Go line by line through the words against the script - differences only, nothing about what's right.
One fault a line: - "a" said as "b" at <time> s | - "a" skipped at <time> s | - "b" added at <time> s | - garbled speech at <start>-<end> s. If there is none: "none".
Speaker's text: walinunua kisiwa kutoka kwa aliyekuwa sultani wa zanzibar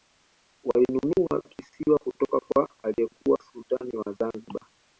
none